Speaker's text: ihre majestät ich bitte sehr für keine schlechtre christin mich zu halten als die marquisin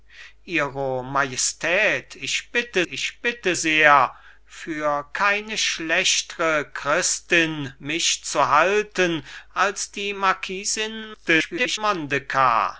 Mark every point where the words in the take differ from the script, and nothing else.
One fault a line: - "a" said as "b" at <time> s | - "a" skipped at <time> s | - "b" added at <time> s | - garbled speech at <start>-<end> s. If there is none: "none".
- "ich bitte" added at 2.8 s
- garbled speech at 11.1-11.8 s